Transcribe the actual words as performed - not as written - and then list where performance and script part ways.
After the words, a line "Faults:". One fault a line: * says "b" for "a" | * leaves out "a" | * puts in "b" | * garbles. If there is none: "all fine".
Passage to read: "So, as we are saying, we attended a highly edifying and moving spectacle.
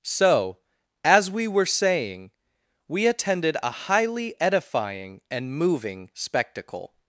"So, as we were saying, we attended a highly edifying and moving spectacle.
Faults:
* says "were" for "are"